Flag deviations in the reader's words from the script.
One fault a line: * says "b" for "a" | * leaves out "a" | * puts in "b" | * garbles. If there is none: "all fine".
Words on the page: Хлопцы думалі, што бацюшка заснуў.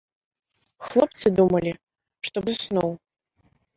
* leaves out "бацюшка"